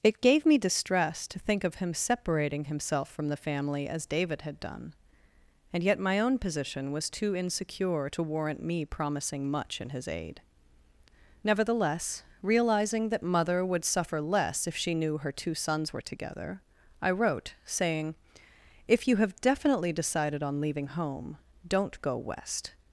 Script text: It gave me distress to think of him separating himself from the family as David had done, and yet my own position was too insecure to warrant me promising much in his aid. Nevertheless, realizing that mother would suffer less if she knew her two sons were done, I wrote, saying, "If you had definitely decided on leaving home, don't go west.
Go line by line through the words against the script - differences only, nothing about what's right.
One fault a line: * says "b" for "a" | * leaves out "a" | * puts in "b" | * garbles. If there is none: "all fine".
* says "together" for "done"
* says "have" for "had"